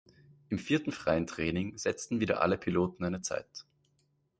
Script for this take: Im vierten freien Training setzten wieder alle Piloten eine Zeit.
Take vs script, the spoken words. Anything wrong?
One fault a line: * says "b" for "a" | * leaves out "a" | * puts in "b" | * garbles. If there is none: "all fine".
all fine